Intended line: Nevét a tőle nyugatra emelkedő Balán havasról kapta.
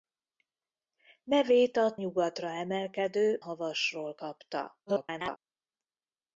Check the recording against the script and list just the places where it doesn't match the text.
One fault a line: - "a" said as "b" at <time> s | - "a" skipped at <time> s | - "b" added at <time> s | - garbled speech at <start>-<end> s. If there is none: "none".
- "tőle" skipped at 2.0 s
- "Balán" skipped at 3.4 s
- garbled speech at 4.9-5.4 s